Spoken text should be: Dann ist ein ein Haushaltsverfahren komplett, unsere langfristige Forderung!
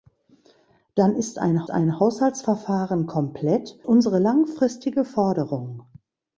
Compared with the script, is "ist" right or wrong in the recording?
right